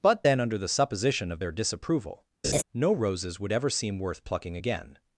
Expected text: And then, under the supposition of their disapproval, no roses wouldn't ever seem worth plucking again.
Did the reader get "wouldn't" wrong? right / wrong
wrong